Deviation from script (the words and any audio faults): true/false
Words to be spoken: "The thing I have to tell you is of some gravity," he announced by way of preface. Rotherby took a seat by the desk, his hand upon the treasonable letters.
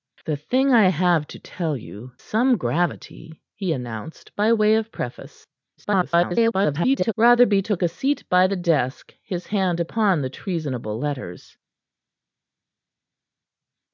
true